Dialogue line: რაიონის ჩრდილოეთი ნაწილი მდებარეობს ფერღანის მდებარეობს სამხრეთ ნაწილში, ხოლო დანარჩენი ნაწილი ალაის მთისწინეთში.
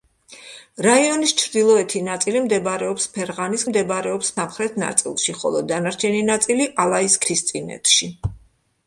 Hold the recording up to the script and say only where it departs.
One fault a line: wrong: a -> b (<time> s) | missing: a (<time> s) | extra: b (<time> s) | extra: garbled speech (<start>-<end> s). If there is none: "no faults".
no faults